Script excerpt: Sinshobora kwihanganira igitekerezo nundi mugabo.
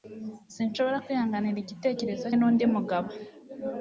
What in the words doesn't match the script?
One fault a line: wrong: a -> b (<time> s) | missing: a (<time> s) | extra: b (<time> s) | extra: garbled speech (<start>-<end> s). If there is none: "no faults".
no faults